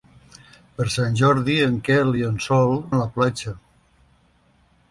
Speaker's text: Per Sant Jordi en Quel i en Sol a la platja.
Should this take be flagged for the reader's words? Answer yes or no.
no